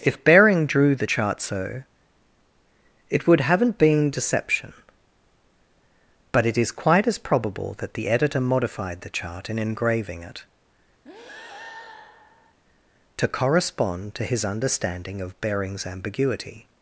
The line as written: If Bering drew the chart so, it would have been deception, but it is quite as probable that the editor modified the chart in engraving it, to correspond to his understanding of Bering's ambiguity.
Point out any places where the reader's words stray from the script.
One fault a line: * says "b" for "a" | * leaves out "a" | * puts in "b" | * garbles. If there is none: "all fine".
* says "haven't" for "have"